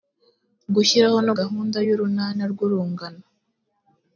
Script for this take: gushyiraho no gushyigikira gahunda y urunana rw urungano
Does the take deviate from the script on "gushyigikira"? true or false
true